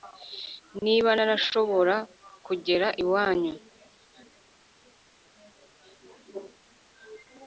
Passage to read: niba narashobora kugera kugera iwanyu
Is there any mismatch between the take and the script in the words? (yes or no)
yes